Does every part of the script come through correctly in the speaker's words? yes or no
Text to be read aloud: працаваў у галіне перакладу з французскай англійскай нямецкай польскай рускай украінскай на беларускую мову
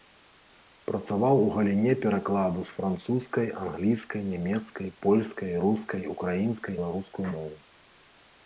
no